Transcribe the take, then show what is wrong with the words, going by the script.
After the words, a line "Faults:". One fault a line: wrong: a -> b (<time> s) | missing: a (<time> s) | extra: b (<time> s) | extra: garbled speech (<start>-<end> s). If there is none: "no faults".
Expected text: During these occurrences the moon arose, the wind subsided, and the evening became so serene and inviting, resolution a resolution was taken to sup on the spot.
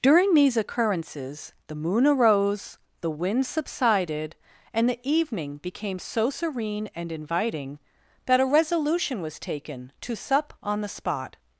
During these occurrences the moon arose, the wind subsided, and the evening became so serene and inviting, that a resolution was taken to sup on the spot.
Faults:
wrong: resolution -> that (8.2 s)